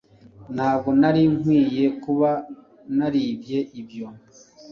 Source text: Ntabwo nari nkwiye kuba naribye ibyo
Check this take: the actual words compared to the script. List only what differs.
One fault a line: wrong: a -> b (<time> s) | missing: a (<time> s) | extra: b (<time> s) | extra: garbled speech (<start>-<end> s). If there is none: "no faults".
no faults